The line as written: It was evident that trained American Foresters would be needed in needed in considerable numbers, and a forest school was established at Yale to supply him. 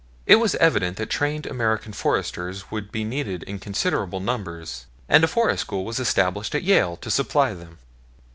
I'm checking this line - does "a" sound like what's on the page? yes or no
yes